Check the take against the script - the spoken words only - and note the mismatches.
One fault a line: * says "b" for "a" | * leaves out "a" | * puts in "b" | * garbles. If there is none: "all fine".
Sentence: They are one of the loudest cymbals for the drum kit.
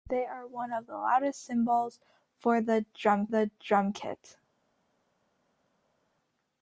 * puts in "the drum"